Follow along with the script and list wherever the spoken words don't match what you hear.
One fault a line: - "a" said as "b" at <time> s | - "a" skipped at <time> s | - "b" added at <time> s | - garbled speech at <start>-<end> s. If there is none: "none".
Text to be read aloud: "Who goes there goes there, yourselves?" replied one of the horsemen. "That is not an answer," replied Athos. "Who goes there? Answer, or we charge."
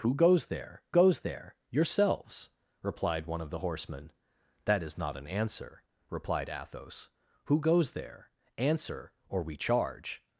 none